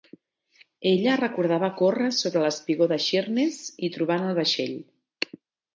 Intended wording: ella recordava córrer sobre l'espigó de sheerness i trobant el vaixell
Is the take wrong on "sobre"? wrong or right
right